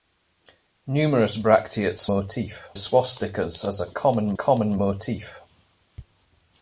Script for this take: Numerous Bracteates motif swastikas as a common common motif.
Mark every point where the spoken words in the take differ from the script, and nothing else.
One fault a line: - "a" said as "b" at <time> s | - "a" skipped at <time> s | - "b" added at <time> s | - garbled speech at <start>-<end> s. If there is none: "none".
none